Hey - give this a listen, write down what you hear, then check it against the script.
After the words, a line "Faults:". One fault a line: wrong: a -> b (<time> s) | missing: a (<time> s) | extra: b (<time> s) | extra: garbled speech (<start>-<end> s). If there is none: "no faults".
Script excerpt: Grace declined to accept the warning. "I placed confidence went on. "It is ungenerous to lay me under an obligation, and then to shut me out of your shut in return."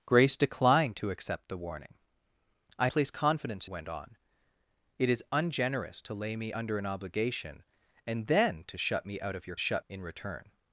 Grace declined to accept the warning. "I placed confidence went on. "It is ungenerous to lay me under an obligation, and then to shut me out of your shut in return."
Faults:
no faults